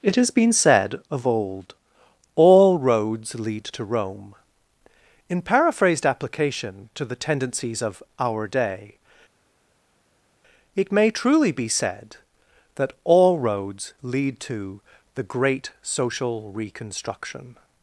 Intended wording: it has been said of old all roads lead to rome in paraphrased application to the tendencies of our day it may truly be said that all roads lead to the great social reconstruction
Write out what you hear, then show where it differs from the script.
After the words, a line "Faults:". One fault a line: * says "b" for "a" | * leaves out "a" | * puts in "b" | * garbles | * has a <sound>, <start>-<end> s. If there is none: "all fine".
it has been said of old all roads lead to rome in paraphrased application to the tendencies of our day it may truly be said that all roads lead to the great social reconstruction
Faults:
all fine